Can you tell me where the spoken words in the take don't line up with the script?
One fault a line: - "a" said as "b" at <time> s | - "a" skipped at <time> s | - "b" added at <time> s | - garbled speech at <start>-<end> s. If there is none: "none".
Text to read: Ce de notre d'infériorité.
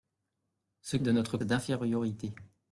none